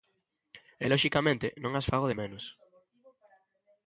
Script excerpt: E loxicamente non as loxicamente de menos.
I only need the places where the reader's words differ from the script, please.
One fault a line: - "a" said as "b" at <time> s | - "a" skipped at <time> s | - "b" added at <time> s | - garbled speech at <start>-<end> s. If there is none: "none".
- "loxicamente" said as "fago" at 1.9 s